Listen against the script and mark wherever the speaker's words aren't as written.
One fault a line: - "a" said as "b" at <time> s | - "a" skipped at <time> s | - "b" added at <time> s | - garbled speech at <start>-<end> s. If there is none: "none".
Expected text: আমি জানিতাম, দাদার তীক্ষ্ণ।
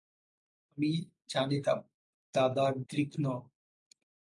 none